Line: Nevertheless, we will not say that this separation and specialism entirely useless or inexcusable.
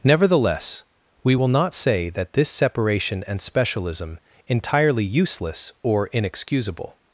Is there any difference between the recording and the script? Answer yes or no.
no